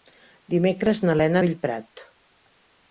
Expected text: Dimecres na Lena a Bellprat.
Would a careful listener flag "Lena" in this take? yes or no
no